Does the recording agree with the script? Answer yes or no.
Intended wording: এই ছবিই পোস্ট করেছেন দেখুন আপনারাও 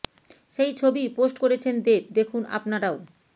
no